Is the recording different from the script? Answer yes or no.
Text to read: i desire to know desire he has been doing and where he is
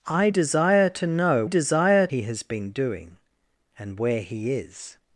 no